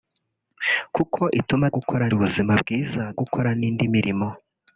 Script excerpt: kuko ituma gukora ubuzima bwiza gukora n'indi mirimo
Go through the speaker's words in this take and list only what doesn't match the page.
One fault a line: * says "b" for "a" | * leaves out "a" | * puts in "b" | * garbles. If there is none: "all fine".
all fine